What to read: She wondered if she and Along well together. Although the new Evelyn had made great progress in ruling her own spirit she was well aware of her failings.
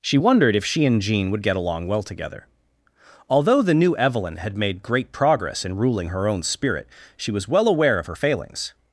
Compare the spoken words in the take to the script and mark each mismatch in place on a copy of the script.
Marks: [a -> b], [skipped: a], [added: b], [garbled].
She wondered if she and [added: Jean would get] Along well together. Although the new Evelyn had made great progress in ruling her own spirit she was well aware of her failings.